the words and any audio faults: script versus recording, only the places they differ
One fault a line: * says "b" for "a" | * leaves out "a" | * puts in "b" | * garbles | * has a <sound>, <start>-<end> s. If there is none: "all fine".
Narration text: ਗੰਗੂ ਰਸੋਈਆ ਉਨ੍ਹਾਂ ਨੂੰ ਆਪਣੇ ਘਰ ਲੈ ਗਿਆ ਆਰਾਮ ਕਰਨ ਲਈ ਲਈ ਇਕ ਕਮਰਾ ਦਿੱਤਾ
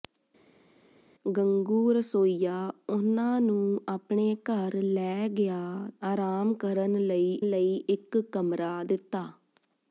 all fine